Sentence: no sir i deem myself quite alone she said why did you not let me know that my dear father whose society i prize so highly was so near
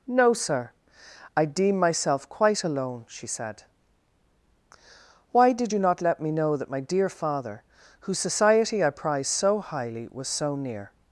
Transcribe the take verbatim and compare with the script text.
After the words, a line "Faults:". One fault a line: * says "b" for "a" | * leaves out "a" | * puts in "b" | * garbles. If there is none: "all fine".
no sir i deem myself quite alone she said why did you not let me know that my dear father whose society i prize so highly was so near
Faults:
all fine